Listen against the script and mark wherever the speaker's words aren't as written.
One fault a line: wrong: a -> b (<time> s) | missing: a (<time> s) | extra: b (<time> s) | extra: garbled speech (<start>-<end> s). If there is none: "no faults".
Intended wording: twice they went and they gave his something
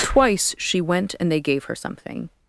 wrong: they -> she (0.6 s)
wrong: his -> her (1.6 s)